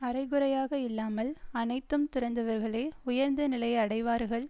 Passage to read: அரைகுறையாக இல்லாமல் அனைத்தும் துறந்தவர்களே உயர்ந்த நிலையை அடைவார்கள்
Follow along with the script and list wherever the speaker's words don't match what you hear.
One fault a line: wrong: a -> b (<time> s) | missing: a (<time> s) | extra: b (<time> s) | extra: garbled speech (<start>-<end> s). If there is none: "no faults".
no faults